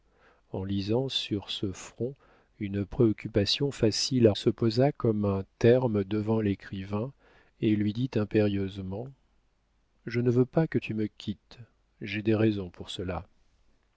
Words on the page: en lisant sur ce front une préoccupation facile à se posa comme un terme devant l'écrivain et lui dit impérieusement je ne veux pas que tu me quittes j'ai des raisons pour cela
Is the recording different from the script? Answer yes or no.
no